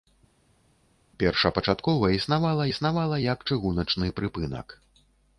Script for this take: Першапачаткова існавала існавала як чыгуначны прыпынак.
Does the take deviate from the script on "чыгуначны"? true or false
false